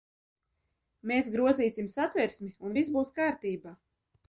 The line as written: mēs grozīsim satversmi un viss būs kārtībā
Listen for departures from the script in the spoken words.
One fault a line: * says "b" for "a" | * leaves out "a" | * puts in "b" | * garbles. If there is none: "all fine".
all fine